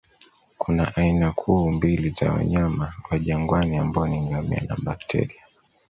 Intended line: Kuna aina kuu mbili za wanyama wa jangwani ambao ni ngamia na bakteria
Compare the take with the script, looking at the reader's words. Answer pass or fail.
pass